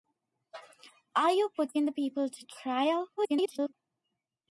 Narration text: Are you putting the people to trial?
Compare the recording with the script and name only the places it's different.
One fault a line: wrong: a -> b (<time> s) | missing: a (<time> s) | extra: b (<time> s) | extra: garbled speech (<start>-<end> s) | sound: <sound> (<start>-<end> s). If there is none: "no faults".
extra: garbled speech (3.2-3.7 s)